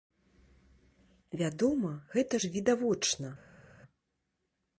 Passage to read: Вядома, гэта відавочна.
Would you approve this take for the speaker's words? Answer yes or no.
no